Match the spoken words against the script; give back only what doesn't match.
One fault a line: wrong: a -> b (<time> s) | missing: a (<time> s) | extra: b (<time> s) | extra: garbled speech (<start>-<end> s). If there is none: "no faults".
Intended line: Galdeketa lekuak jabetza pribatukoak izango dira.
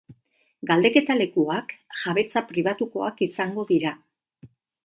no faults